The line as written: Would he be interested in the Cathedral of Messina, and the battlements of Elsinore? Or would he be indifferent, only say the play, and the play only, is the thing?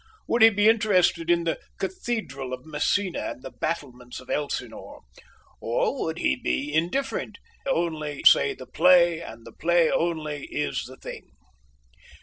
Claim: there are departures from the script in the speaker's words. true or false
false